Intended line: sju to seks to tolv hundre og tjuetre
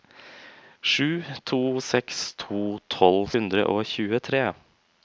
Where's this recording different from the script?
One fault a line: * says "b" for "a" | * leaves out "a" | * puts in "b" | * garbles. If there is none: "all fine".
all fine